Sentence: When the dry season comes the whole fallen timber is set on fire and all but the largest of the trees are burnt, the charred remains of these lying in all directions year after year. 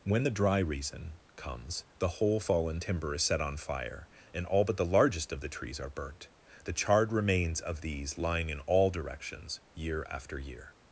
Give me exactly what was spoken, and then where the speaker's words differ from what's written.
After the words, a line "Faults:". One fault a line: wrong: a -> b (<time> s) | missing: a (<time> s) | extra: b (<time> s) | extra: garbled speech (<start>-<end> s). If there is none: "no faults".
When the dry reason comes the whole fallen timber is set on fire and all but the largest of the trees are burnt, the charred remains of these lying in all directions year after year.
Faults:
wrong: season -> reason (0.6 s)